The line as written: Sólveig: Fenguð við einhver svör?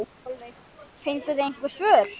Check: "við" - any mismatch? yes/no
yes